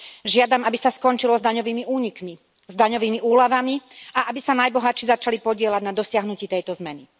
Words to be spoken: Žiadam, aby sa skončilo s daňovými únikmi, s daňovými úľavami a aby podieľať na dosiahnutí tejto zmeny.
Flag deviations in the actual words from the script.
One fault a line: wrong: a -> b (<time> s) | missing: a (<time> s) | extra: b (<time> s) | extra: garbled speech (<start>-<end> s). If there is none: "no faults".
extra: sa najbohatší začali (4.4 s)